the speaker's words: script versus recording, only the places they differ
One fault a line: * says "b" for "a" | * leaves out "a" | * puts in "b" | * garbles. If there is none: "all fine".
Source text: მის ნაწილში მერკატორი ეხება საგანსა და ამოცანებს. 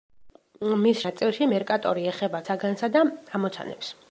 all fine